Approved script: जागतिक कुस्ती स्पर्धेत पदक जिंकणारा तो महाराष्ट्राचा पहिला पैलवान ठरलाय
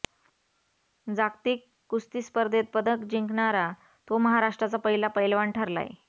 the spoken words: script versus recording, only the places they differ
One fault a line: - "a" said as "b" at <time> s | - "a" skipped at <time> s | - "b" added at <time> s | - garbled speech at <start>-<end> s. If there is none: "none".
none